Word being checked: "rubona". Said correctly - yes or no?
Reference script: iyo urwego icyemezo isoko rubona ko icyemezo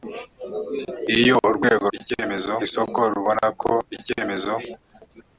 yes